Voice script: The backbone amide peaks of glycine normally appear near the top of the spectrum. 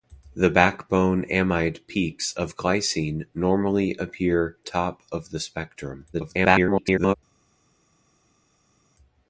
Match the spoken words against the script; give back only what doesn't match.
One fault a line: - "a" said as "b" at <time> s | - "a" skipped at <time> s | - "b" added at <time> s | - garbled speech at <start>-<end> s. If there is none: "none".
- "near the" skipped at 4.6 s
- garbled speech at 6.1-7.2 s